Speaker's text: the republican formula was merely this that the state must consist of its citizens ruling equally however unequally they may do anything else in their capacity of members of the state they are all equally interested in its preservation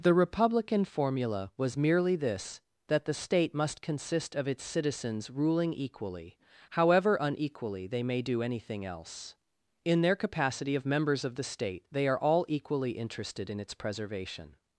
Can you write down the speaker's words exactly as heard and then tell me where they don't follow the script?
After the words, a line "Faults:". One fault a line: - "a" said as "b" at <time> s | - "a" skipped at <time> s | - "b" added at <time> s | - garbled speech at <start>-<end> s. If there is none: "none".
the republican formula was merely this that the state must consist of its citizens ruling equally however unequally they may do anything else in their capacity of members of the state they are all equally interested in its preservation
Faults:
none